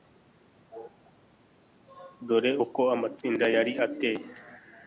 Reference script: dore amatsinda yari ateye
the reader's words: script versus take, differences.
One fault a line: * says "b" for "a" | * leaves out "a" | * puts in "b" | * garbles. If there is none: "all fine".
* puts in "uko"